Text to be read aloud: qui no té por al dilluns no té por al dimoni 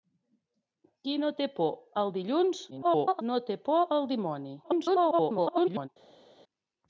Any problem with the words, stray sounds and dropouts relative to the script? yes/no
yes